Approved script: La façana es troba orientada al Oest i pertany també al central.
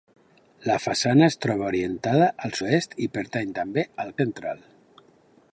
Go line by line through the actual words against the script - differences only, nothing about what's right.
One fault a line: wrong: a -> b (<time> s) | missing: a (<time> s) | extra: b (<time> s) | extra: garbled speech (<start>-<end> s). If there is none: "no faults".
no faults